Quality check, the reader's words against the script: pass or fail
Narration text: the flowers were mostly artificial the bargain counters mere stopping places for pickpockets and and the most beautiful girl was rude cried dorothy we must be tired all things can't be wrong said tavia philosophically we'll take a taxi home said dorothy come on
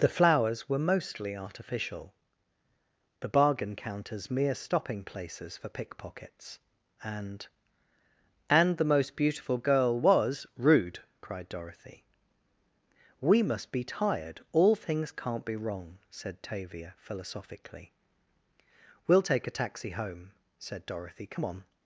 pass